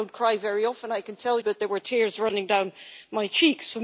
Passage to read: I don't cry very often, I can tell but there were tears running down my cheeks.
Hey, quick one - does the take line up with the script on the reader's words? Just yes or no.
yes